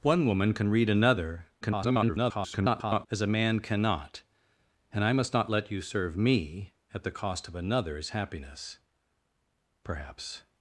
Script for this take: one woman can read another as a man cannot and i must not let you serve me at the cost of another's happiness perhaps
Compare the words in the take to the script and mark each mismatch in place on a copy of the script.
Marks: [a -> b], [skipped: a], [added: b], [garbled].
one woman can read another [garbled] as a man cannot and i must not let you serve me at the cost of another's happiness perhaps